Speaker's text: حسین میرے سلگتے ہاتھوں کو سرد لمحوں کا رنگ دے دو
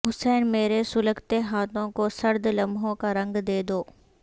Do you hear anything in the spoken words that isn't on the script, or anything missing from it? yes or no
no